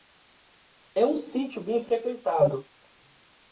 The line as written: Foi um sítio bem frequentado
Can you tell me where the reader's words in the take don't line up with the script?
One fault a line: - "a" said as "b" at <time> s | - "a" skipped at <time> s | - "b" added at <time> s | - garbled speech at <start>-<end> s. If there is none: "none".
- "Foi" said as "É" at 0.9 s